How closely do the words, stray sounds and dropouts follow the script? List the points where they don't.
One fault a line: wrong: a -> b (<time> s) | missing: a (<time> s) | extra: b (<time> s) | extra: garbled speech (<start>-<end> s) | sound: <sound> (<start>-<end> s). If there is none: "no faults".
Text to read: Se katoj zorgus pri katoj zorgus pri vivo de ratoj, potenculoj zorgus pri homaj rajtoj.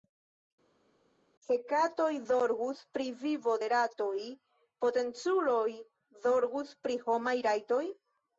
missing: katoj zorgus pri (3.1 s)